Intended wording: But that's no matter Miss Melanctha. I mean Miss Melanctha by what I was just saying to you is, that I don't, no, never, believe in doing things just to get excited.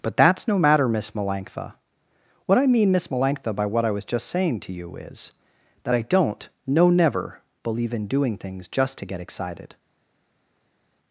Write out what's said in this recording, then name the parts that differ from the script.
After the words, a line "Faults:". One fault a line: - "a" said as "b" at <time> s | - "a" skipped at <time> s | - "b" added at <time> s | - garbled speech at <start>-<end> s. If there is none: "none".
But that's no matter Miss Melanctha. What I mean Miss Melanctha by what I was just saying to you is, that I don't, no, never, believe in doing things just to get excited.
Faults:
- "What" added at 2.5 s